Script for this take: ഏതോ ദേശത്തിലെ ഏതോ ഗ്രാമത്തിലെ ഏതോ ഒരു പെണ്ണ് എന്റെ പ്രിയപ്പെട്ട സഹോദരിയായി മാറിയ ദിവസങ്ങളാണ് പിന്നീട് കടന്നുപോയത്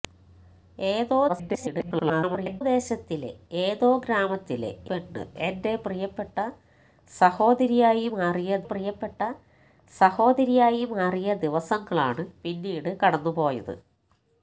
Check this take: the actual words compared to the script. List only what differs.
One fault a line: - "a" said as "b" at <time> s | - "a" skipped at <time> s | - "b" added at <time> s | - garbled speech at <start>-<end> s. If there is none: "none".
- garbled speech at 1.3-2.6 s
- "ഏതോ ഒരു പെണ്ണ് എന്റെ" said as "പെണ്ണ് എന്റെ പ്രിയപ്പെട്ട സഹോദരിയായി മാറിയ" at 4.9 s